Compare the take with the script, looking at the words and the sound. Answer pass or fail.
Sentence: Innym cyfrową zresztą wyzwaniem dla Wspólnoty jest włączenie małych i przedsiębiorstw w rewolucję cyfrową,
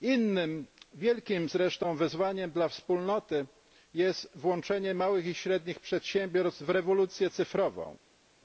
fail